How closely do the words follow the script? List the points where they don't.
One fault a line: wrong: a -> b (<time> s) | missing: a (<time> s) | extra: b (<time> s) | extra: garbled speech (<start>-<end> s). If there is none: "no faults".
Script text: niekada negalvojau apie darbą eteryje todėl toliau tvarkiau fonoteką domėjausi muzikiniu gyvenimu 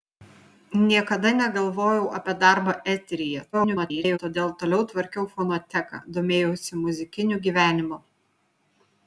extra: garbled speech (3.5-4.2 s)